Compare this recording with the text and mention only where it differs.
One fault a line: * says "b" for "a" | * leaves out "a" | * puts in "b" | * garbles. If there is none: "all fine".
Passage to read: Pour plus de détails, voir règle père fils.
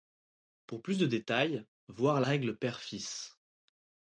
all fine